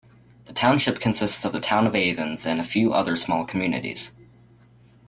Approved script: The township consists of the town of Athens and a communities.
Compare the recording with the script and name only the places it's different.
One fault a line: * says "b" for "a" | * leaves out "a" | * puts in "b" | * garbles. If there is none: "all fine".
* puts in "few other small"